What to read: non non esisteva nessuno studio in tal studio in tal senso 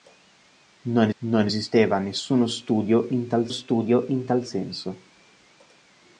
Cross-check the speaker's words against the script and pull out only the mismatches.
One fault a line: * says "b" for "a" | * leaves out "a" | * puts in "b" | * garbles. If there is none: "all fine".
all fine